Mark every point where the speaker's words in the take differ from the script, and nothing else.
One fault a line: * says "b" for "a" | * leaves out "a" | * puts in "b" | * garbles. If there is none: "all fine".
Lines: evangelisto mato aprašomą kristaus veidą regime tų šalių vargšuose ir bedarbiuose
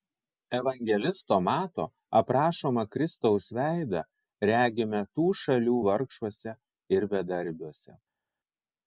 all fine